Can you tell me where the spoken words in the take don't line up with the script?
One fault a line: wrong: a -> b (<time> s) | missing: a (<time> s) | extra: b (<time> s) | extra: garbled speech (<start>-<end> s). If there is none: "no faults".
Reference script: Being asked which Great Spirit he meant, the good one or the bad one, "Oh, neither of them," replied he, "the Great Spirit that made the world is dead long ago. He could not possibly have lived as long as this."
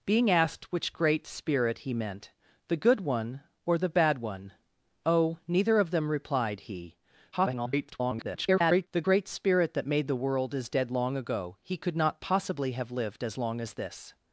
extra: garbled speech (7.3-8.9 s)